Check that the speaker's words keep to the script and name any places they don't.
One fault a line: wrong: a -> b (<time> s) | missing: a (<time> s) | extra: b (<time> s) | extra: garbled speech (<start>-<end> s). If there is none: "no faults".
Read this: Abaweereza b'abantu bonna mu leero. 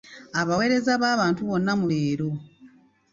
no faults